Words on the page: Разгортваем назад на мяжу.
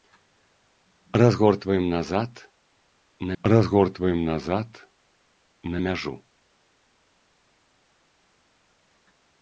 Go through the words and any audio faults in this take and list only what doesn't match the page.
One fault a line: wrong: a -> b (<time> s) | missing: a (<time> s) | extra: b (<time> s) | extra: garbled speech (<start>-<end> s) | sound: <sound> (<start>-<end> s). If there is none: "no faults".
extra: разгортваем назад на (3.4 s)